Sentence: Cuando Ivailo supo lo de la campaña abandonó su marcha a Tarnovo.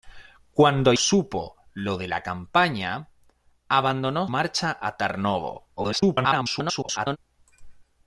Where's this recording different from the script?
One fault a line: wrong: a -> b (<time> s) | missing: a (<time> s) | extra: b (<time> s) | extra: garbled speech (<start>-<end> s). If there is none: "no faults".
missing: Ivailo (0.9 s)
missing: su (4.3 s)
extra: garbled speech (5.8-7.2 s)